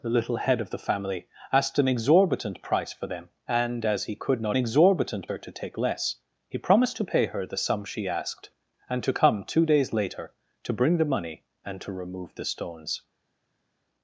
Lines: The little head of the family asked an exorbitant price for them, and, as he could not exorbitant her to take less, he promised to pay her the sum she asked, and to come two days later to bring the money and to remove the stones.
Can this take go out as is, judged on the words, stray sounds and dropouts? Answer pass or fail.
pass